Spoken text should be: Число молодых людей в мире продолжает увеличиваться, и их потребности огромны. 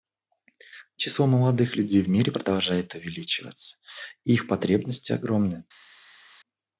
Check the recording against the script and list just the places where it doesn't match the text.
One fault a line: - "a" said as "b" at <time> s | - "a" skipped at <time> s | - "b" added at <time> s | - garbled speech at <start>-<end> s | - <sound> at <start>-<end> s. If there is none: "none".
none